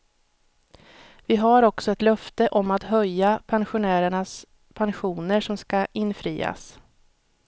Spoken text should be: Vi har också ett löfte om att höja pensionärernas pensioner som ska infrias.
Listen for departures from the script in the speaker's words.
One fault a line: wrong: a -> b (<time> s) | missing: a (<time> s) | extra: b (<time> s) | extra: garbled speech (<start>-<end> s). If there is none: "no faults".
no faults